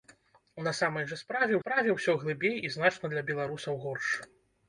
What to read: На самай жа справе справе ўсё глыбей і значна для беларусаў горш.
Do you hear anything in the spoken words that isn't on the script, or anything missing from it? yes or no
no